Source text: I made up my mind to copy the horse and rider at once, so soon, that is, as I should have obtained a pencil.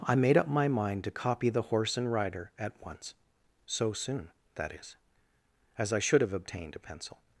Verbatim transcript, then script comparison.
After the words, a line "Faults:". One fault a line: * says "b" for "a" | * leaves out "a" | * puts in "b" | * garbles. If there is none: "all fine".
I made up my mind to copy the horse and rider at once, so soon, that is, as I should have obtained a pencil.
Faults:
all fine